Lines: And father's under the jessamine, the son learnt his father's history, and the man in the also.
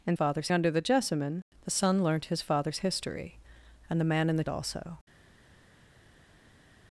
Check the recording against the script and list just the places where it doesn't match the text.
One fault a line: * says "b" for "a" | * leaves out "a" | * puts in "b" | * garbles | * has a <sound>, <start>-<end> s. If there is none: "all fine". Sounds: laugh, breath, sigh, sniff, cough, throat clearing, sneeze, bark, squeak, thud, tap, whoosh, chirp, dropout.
all fine